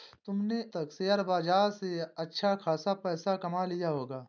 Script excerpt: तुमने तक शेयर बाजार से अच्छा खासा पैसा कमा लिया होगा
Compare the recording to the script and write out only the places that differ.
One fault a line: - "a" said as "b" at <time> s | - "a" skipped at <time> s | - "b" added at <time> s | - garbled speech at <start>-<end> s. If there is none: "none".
none